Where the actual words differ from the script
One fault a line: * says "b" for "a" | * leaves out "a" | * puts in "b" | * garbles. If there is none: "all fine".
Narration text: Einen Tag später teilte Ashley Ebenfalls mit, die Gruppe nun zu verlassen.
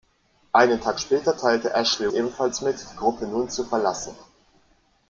all fine